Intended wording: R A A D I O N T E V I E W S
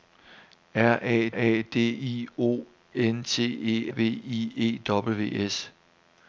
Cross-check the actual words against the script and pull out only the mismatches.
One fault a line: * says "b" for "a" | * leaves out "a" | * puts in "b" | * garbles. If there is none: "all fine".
all fine